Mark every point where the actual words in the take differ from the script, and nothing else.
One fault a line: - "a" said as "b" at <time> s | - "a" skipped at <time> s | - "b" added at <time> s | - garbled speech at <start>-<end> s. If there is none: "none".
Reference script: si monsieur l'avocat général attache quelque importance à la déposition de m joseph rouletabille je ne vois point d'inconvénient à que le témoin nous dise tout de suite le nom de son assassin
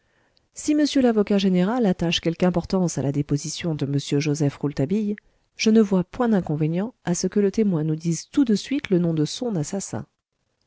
- "ce" added at 7.1 s